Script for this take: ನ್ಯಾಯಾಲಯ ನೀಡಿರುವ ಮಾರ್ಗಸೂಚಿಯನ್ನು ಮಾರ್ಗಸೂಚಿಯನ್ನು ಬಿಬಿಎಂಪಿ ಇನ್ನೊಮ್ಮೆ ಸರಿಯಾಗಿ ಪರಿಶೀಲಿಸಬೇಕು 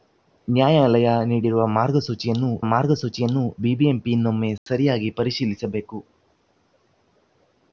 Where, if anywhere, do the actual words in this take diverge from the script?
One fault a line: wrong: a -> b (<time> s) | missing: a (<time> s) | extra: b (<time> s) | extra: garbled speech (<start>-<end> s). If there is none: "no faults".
no faults